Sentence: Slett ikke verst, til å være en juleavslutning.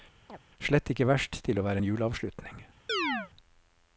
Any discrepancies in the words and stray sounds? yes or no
yes